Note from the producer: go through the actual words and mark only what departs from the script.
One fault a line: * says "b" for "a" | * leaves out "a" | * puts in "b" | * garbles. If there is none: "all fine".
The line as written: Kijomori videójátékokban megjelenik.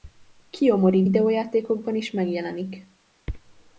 * puts in "is"